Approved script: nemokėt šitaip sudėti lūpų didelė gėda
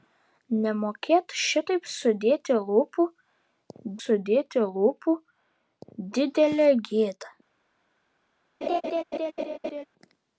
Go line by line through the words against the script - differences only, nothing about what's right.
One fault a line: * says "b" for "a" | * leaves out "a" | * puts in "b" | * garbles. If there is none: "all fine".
* puts in "sudėti lūpų"